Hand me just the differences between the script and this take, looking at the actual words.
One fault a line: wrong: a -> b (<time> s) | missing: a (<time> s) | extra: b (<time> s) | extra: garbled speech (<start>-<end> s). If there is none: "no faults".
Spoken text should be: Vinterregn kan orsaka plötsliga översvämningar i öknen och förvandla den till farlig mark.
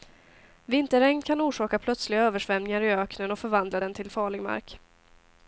no faults